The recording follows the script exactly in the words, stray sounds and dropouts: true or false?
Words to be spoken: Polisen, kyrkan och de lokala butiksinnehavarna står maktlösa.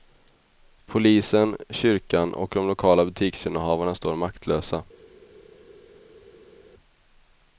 true